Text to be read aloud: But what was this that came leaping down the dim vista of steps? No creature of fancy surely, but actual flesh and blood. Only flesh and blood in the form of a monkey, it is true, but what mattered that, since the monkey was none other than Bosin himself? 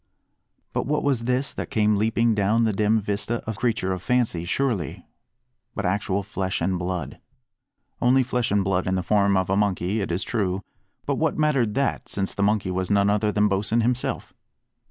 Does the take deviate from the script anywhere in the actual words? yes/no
yes